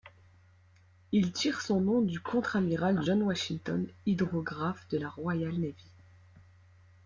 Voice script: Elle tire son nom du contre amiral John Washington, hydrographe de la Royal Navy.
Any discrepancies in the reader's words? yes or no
yes